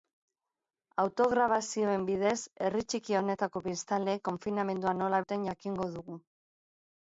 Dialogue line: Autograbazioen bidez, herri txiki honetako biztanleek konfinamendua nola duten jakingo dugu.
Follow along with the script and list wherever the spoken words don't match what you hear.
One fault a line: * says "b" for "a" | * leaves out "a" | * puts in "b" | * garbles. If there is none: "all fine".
all fine